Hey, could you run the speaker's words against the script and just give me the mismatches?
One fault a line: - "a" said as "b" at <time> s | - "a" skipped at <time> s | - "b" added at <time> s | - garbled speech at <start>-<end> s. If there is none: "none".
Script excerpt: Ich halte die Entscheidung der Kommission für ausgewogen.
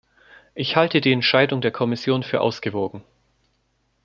none